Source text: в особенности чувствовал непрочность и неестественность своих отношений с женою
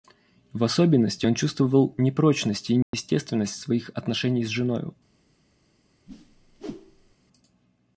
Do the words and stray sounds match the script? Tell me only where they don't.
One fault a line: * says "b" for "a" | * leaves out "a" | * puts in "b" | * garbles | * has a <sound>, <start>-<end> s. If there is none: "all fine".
* puts in "он"
* has a dropout, 2.8-2.9 s
* has a whoosh, 6.1-7.2 s